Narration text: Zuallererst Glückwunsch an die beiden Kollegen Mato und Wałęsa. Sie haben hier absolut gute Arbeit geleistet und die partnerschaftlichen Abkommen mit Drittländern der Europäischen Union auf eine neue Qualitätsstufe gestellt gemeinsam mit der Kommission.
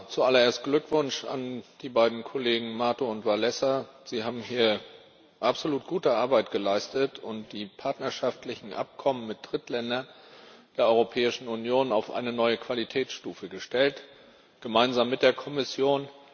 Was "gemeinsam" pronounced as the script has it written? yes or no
yes